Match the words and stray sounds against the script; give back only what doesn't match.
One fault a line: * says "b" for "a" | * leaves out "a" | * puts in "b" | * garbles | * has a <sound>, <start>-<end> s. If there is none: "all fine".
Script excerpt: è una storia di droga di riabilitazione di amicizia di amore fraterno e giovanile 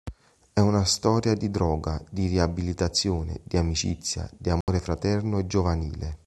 * has a dropout, 4.6-4.7 s